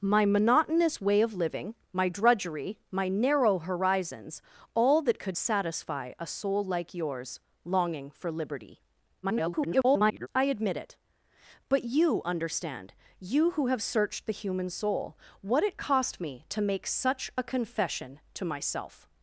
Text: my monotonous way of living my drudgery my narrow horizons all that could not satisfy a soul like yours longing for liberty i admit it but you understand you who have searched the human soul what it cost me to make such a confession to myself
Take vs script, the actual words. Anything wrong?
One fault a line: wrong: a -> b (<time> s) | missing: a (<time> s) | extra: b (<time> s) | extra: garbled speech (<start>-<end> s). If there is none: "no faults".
missing: not (5.4 s)
extra: garbled speech (9.2-10.3 s)